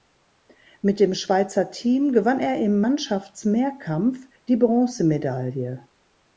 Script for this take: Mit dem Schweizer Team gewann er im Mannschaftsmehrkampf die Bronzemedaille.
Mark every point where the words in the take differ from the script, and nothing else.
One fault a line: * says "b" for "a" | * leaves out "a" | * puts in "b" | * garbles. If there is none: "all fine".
all fine